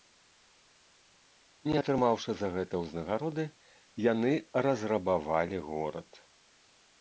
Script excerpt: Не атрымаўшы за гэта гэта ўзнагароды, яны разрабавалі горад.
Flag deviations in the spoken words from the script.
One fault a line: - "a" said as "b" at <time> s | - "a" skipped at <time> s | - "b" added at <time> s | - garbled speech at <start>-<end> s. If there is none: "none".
- "гэта" skipped at 2.7 s